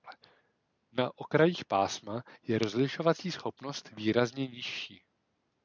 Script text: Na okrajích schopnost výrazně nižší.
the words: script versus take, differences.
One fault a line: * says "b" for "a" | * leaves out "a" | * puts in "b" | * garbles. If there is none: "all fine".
* puts in "pásma je rozlišovací"